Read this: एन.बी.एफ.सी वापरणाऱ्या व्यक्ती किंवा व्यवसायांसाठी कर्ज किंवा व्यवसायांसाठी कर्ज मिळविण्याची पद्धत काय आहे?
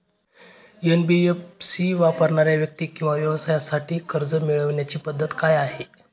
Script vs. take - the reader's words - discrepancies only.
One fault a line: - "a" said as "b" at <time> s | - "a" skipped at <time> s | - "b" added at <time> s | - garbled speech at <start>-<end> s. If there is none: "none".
- "किंवा व्यवसायांसाठी कर्ज" skipped at 4.3 s